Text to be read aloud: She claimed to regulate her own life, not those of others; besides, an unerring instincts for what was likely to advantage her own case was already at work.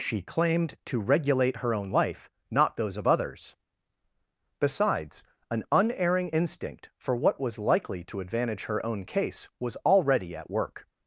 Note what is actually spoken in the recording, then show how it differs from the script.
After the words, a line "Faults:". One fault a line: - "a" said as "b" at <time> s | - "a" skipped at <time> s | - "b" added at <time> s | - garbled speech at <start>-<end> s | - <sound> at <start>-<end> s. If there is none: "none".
She claimed to regulate her own life, not those of others; besides, an unerring instinct for what was likely to advantage her own case was already at work.
Faults:
- "instincts" said as "instinct" at 6.3 s